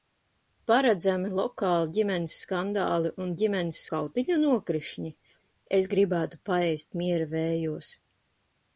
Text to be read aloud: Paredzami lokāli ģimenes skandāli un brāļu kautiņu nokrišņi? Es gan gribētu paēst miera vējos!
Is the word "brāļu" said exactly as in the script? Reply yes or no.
no